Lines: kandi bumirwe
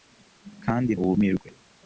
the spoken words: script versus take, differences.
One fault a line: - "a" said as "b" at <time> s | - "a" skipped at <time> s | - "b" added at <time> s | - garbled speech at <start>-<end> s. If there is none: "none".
none